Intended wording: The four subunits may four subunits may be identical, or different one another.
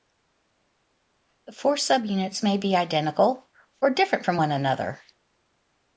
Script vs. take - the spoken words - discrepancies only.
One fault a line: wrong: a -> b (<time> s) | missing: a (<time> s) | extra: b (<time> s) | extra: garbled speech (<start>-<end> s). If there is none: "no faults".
missing: four subunits may (2.6 s)
extra: from (4.2 s)